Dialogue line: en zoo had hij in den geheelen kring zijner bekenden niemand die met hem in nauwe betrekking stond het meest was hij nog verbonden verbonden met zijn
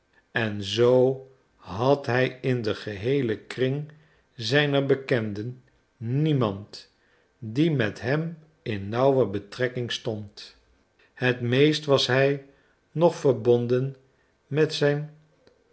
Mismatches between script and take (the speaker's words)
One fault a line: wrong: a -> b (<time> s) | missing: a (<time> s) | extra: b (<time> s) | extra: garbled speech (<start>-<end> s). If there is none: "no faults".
missing: verbonden (14.0 s)